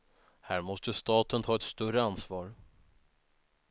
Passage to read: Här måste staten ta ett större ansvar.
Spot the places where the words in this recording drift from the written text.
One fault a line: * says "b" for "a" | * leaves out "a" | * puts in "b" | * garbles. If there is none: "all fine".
all fine